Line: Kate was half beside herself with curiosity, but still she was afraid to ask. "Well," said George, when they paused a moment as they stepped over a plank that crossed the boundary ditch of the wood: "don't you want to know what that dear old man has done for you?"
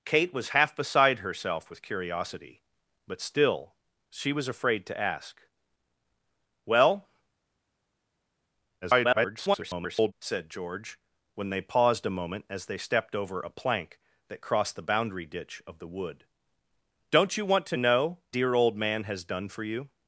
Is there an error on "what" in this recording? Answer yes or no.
yes